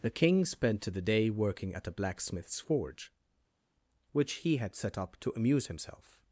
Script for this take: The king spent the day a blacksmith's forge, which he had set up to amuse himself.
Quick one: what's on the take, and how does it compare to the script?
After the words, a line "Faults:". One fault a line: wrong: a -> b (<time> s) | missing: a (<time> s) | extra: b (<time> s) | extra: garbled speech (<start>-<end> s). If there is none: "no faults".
The king spent the day working at a blacksmith's forge, which he had set up to amuse himself.
Faults:
extra: working at (1.3 s)